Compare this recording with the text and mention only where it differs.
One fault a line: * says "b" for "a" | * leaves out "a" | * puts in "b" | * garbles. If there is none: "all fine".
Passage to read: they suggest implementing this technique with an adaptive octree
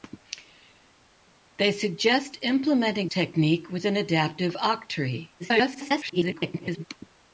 * leaves out "this"
* garbles